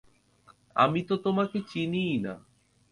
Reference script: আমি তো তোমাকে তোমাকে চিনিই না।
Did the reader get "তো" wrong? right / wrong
right